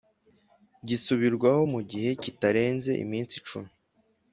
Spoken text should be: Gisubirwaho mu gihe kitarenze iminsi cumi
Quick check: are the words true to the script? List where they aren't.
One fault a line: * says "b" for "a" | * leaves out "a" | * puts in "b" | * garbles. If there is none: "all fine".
all fine